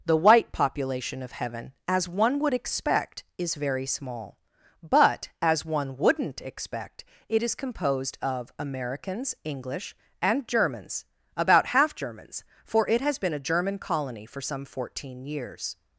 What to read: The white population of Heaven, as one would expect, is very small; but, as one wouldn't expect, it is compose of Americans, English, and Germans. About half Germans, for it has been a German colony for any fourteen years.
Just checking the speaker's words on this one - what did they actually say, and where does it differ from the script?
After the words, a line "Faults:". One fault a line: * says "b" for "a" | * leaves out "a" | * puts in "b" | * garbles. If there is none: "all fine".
The white population of Heaven, as one would expect, is very small; but, as one wouldn't expect, it is composed of Americans, English, and Germans. About half Germans, for it has been a German colony for some fourteen years.
Faults:
* says "composed" for "compose"
* says "some" for "any"